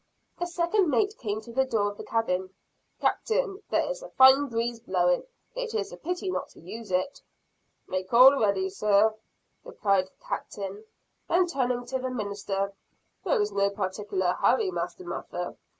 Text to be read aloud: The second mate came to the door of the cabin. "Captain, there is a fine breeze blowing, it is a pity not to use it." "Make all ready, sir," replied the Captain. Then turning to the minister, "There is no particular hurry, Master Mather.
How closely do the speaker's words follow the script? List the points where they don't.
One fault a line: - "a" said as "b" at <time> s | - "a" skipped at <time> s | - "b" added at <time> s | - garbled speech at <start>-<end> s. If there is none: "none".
none